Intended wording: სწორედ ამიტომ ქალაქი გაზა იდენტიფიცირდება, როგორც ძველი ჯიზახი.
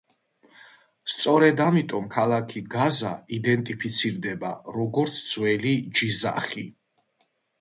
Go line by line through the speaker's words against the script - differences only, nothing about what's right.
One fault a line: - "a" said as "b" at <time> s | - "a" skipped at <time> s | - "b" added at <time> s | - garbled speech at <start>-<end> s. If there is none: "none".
none